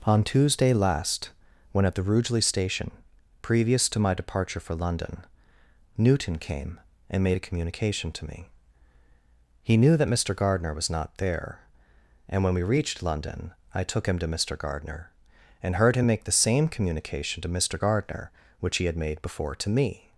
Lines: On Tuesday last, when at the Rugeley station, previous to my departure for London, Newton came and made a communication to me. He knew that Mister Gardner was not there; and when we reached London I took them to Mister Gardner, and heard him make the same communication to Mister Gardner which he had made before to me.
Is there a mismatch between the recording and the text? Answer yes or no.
yes